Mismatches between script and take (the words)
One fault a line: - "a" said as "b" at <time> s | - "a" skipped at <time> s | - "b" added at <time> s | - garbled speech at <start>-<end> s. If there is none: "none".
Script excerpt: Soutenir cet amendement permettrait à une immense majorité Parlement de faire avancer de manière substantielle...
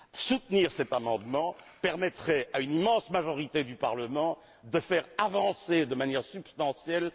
- "du" added at 3.6 s